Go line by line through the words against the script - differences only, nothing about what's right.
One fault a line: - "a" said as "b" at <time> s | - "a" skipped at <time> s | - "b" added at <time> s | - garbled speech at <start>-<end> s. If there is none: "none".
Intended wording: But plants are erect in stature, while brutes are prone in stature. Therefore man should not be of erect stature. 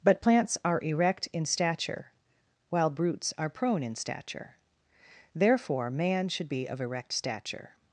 - "not" skipped at 6.5 s